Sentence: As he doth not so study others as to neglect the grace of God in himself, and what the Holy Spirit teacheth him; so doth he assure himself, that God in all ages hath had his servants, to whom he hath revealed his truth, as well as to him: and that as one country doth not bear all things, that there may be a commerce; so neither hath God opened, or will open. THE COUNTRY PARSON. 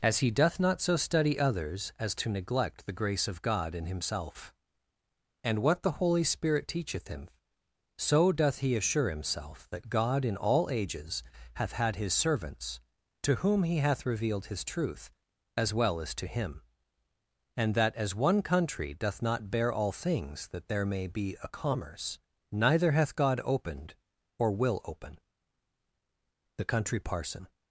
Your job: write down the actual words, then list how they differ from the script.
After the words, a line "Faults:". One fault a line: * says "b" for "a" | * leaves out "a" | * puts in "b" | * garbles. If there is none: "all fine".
As he doth not so study others as to neglect the grace of God in himself, and what the Holy Spirit teacheth him; so doth he assure himself, that God in all ages hath had his servants, to whom he hath revealed his truth, as well as to him: and that as one country doth not bear all things, that there may be a commerce; neither hath God opened, or will open. THE COUNTRY PARSON.
Faults:
* leaves out "so"